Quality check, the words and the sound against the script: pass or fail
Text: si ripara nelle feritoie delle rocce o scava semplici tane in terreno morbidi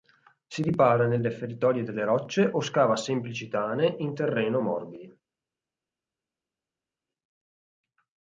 pass